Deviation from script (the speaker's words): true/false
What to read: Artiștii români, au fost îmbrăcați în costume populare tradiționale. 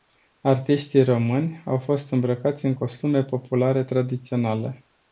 false